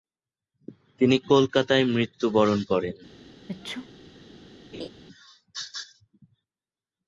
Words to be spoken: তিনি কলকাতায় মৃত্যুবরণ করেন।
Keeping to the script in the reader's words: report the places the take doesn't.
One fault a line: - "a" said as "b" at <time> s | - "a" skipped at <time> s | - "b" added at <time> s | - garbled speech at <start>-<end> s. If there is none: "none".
none